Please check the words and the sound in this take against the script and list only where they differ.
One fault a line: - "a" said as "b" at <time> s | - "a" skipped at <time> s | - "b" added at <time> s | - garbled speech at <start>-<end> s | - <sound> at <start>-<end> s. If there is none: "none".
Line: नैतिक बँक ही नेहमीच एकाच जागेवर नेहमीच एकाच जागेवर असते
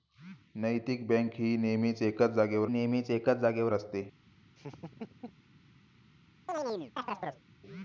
- laugh at 4.6-5.4 s
- chirp at 6.5-7.4 s